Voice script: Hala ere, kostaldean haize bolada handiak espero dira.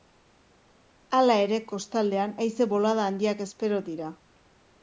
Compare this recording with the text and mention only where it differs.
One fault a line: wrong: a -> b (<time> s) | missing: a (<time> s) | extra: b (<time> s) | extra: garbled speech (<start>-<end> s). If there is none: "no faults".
no faults